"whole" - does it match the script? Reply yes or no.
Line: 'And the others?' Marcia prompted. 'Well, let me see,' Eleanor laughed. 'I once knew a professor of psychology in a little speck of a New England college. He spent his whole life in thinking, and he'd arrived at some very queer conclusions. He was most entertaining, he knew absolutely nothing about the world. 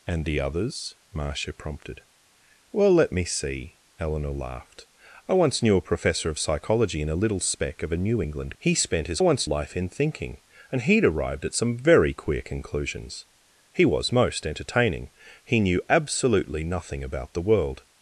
no